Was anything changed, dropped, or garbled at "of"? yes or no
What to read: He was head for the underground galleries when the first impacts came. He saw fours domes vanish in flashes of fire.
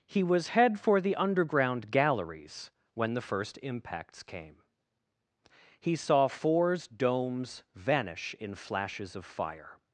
no